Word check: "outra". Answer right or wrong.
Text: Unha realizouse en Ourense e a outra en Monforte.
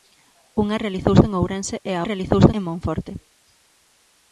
wrong